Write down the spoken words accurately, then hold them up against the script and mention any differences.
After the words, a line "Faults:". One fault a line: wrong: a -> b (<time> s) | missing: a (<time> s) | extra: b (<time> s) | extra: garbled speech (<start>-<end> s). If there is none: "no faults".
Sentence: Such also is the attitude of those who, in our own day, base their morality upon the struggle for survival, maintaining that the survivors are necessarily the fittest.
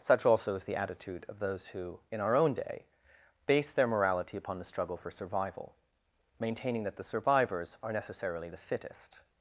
Such also is the attitude of those who, in our own day, base their morality upon the struggle for survival, maintaining that the survivors are necessarily the fittest.
Faults:
no faults